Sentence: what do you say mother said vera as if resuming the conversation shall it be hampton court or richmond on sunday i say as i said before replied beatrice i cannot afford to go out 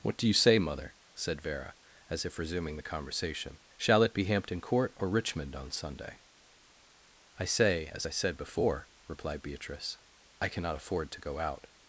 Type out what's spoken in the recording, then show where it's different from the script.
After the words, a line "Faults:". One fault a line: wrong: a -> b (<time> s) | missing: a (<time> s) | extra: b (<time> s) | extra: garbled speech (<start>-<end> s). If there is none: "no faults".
what do you say mother said vera as if resuming the conversation shall it be hampton court or richmond on sunday i say as i said before replied beatrice i cannot afford to go out
Faults:
no faults